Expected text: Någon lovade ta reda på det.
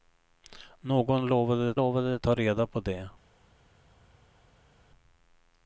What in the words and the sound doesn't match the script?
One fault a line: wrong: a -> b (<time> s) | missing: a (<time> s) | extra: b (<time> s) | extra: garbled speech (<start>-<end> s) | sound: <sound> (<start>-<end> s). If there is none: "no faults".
extra: lovade (1.7 s)